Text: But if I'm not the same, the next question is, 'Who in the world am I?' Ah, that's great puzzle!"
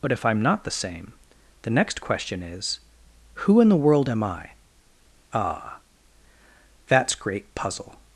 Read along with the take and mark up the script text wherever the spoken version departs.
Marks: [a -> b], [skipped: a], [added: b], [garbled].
But if I'm not the same, the next question is, 'Who in the world am I?' Ah, that's great puzzle!"